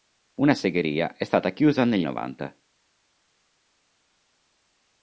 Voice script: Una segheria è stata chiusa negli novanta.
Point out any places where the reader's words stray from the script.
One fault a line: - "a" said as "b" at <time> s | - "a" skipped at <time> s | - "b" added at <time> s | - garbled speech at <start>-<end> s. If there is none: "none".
none